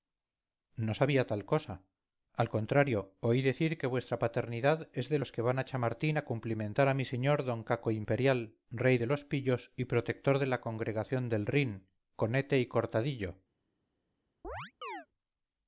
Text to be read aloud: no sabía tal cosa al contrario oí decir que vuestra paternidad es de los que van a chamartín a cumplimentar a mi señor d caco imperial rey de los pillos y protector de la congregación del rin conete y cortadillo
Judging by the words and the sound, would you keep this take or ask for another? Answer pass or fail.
fail